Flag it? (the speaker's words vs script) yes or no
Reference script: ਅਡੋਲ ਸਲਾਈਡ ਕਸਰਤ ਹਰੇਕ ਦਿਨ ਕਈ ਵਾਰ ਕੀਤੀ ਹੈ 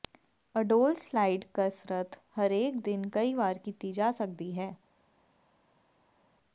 yes